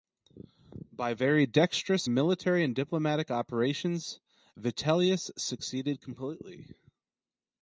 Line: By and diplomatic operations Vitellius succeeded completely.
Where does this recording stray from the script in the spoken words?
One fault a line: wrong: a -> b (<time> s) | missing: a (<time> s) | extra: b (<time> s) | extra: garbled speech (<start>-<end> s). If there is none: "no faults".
extra: very dexterous military (1.1 s)